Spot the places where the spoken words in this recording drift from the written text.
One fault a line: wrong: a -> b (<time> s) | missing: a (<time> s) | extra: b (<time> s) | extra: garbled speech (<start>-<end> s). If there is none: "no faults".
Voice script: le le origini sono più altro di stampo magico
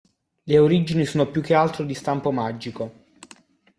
missing: le (0.6 s)
extra: che (1.4 s)